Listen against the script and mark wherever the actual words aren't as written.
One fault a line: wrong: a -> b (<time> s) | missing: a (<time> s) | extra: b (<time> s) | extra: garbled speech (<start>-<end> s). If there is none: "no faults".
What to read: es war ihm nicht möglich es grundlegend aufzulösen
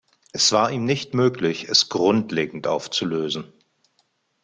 no faults